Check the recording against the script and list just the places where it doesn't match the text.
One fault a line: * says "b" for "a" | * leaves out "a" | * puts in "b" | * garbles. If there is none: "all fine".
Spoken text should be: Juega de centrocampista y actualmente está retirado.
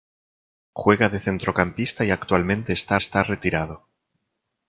* puts in "está"